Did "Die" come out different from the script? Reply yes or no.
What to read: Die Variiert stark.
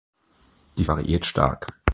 no